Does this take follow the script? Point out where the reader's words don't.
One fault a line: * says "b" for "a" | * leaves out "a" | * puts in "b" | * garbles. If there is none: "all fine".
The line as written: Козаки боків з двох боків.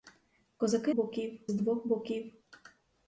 all fine